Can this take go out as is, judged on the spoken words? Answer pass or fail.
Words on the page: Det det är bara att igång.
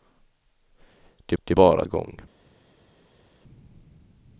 pass